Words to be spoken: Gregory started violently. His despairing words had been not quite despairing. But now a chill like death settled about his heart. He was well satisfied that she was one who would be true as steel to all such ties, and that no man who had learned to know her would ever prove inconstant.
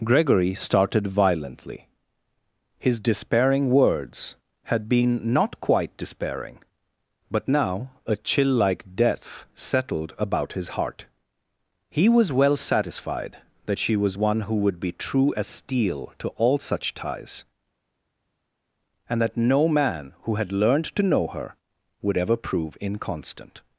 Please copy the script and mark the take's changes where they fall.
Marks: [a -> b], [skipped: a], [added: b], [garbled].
Gregory started violently. His despairing words had been not quite despairing. But now a chill like death settled about his heart. He was well satisfied that she was one who would be true as steel to all such ties, and that no man who had learned to know her would ever prove inconstant.